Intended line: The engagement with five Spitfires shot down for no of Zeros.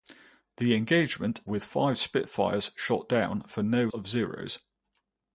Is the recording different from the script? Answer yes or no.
no